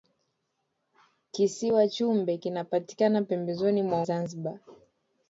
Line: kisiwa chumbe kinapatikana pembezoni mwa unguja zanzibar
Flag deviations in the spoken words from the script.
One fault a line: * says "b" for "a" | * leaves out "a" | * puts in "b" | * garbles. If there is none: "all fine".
* leaves out "unguja"